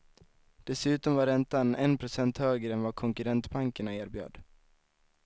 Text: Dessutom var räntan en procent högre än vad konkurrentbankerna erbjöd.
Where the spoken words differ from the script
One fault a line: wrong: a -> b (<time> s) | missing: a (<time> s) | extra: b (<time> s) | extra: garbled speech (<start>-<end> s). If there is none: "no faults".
no faults